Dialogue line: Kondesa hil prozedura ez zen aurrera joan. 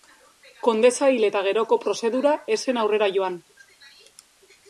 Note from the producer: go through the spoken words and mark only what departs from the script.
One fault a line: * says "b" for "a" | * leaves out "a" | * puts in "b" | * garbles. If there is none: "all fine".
* puts in "eta geroko"